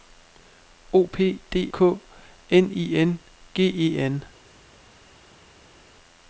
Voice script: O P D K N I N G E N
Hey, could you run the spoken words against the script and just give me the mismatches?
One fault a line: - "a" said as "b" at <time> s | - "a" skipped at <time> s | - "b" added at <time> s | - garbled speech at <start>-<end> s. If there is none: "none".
none